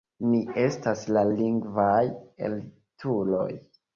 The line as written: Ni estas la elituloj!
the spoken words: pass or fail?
fail